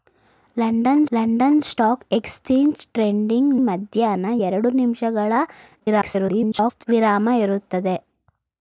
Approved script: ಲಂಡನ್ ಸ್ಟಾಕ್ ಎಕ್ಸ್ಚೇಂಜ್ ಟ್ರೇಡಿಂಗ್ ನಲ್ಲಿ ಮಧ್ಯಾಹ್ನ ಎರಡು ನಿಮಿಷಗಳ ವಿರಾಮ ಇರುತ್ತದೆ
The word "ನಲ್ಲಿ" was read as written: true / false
false